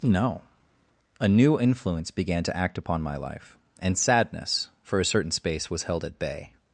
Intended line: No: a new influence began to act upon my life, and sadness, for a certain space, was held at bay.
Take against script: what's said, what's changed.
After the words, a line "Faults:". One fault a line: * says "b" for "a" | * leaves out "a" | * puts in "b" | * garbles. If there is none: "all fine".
No: a new influence began to act upon my life, and sadness, for a certain space, was held at bay.
Faults:
all fine